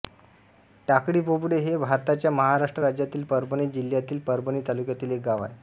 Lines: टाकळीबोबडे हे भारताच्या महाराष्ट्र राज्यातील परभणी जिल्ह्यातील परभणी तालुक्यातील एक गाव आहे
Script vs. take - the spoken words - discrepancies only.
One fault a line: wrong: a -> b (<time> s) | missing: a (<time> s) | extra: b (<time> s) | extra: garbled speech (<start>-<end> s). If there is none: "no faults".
no faults